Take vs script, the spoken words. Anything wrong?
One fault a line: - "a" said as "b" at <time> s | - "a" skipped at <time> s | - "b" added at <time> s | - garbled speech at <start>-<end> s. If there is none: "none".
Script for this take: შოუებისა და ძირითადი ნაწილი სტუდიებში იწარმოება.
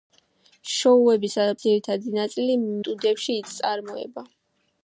none